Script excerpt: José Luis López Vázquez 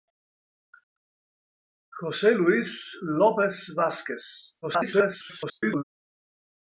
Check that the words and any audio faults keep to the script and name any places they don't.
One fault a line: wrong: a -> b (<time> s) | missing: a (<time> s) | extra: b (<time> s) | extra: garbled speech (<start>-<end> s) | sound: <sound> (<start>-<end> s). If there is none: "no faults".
extra: garbled speech (4.6-5.8 s)